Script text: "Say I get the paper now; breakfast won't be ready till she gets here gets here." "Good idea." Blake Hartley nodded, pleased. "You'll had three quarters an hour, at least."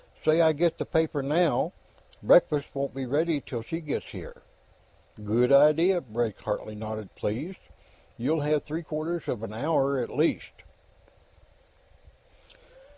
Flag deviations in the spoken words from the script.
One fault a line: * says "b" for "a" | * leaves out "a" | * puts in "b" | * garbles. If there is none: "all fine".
* leaves out "gets here"
* says "have" for "had"
* puts in "of"